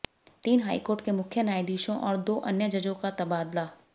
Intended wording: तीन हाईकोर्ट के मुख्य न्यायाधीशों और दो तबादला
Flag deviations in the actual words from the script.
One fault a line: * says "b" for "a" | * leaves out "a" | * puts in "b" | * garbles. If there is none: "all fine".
* puts in "अन्य जजों का"